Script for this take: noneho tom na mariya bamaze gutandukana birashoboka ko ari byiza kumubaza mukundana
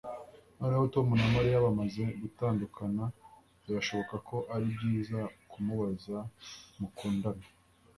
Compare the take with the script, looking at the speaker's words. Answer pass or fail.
pass